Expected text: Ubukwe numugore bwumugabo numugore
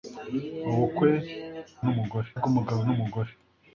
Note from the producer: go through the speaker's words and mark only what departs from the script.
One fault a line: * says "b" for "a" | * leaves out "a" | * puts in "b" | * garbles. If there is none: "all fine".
all fine